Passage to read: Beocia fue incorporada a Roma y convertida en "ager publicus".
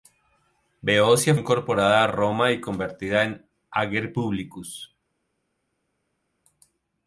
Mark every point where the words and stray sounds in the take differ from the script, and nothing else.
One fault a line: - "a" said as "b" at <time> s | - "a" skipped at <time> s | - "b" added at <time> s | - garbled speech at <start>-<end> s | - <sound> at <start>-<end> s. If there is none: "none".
- "fue" skipped at 1.4 s